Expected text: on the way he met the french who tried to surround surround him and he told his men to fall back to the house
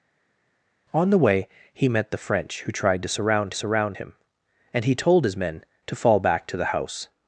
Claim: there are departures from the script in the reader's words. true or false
false